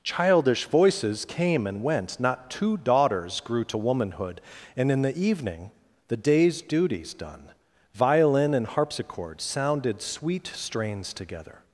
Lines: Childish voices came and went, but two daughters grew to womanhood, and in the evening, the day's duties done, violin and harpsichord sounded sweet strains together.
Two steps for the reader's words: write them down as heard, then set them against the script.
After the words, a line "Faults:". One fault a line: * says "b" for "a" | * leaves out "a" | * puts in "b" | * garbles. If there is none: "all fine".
Childish voices came and went, not two daughters grew to womanhood, and in the evening, the day's duties done, violin and harpsichord sounded sweet strains together.
Faults:
* says "not" for "but"